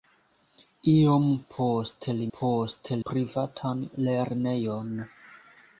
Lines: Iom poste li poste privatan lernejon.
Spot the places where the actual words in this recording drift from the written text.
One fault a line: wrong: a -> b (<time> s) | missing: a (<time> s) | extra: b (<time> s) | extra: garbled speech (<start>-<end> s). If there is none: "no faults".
no faults